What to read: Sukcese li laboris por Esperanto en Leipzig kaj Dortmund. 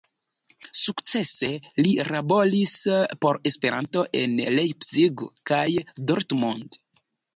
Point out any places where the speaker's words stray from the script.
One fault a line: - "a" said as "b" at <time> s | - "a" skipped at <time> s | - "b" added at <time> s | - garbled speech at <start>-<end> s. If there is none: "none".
none